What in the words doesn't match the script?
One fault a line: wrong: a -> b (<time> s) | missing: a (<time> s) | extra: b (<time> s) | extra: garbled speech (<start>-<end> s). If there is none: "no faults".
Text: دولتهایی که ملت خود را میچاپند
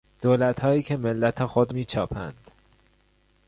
missing: را (1.8 s)